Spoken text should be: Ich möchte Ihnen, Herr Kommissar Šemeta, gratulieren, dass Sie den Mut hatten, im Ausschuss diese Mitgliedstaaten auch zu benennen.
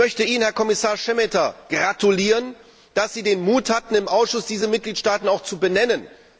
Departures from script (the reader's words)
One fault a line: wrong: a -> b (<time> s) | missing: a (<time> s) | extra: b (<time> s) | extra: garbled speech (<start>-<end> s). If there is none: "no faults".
no faults